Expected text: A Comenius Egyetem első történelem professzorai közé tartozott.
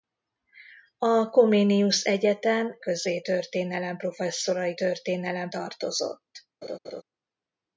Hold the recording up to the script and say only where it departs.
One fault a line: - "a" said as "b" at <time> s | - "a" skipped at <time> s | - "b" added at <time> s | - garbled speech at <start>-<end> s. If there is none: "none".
- "első" said as "közé" at 2.8 s
- "közé" said as "történelem" at 4.7 s